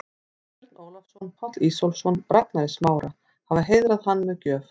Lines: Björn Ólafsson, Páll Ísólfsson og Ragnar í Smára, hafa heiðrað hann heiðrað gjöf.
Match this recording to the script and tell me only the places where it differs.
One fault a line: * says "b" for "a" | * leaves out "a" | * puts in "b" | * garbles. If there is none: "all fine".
* says "með" for "heiðrað"